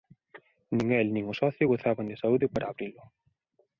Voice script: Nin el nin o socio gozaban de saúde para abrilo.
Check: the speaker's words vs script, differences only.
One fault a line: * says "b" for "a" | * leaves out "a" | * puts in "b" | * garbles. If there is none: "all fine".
all fine